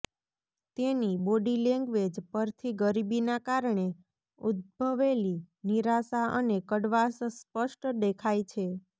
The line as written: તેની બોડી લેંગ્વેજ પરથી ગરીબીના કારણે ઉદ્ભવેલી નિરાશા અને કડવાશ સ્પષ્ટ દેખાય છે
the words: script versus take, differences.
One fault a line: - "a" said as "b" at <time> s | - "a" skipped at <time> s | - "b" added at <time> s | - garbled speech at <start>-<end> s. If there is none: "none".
none